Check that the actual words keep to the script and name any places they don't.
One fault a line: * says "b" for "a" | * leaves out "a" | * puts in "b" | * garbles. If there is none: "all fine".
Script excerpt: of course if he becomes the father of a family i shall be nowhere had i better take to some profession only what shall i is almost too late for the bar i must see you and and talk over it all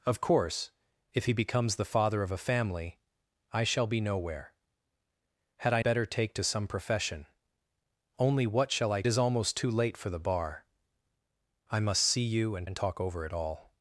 all fine